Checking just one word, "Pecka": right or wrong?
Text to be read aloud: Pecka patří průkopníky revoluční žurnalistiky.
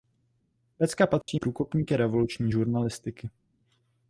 right